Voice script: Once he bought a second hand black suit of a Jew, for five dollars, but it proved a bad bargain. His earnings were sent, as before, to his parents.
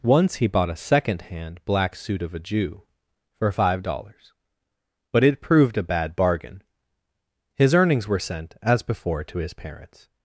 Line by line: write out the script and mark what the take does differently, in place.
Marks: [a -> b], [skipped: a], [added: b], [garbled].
Once he bought a second hand black suit of a Jew, for five dollars, but it proved a bad bargain. His earnings were sent, as before, to his parents.